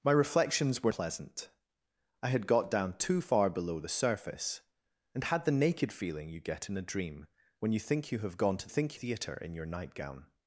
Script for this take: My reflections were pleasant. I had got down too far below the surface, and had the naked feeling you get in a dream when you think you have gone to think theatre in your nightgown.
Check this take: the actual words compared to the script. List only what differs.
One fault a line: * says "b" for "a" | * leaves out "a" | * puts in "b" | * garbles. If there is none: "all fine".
all fine